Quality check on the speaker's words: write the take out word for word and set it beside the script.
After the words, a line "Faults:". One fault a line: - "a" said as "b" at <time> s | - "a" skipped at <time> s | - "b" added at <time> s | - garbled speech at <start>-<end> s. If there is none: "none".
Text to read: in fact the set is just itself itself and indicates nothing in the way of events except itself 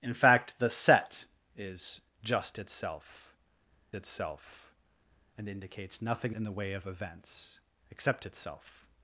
in fact the set is just itself itself and indicates nothing in the way of events except itself
Faults:
none